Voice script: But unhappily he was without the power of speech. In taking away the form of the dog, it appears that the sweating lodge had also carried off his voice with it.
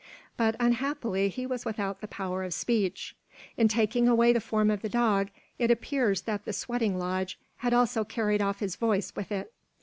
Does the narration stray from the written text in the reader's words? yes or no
no